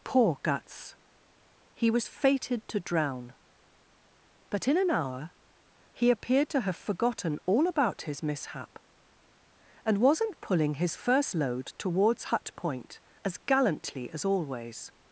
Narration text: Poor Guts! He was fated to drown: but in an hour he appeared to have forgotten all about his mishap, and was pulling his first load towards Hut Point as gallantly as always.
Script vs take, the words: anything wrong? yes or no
yes